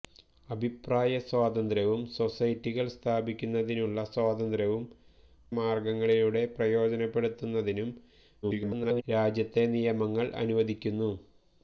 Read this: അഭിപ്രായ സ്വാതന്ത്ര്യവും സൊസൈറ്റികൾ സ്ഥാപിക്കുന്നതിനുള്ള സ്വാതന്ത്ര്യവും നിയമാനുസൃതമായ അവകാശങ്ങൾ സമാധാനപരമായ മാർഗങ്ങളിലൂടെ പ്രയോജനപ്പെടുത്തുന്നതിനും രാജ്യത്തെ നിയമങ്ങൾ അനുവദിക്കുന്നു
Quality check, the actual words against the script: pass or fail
fail